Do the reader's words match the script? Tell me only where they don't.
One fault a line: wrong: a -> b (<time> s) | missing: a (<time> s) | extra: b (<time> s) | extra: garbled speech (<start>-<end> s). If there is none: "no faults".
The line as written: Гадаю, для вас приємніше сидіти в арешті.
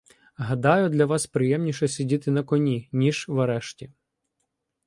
extra: на коні ніж (2.3 s)